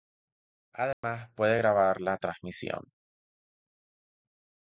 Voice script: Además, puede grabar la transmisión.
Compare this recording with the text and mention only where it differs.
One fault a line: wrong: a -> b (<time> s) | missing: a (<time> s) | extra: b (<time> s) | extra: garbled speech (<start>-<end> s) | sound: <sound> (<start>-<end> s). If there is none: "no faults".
sound: dropout (0.9-1.0 s)